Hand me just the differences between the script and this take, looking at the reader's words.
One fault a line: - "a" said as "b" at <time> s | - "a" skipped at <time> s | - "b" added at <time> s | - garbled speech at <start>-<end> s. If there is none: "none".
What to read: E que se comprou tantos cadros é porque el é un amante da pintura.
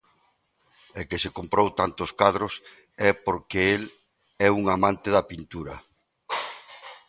none